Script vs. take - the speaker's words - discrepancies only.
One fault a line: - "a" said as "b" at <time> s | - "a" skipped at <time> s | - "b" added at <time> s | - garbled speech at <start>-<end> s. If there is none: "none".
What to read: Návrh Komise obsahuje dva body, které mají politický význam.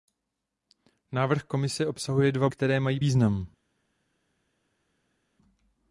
- "body" skipped at 2.5 s
- "politický" skipped at 3.0 s